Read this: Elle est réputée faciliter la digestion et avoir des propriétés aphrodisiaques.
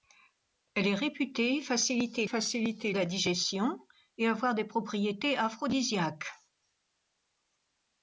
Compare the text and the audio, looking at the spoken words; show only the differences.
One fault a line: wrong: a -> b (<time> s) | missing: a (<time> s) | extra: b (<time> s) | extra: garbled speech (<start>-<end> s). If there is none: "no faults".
extra: faciliter (2.2 s)